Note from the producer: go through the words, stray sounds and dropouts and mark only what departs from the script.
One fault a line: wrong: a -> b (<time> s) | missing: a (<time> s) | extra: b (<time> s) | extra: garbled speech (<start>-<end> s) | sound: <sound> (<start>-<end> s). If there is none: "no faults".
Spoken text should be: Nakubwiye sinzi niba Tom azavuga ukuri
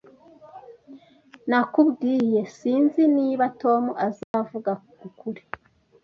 sound: dropout (4.2-4.3 s)